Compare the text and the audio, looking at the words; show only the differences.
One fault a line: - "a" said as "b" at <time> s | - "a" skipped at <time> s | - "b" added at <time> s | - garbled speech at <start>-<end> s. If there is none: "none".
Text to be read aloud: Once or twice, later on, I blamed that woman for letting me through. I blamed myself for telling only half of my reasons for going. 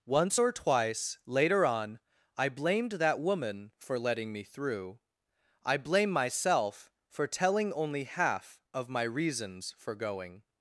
- "blamed" said as "blame" at 5.8 s